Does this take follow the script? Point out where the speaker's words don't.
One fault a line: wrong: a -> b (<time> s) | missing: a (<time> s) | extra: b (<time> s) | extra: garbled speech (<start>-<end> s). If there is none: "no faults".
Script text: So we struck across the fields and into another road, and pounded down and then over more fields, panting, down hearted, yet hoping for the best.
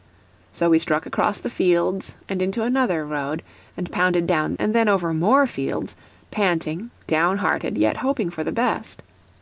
no faults